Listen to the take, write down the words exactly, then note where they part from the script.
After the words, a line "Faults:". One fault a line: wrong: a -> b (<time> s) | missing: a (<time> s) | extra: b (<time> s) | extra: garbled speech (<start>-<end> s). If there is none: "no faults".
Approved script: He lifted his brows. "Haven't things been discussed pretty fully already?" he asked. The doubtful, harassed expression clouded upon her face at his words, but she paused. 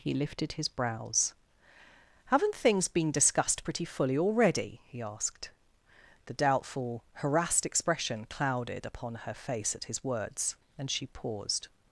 He lifted his brows. "Haven't things been discussed pretty fully already?" he asked. The doubtful, harassed expression clouded upon her face at his words, and she paused.
Faults:
wrong: but -> and (10.8 s)